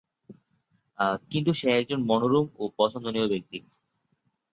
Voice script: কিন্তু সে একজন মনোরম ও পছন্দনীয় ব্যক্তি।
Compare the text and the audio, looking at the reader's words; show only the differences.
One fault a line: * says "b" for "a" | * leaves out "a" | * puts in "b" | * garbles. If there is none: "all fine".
all fine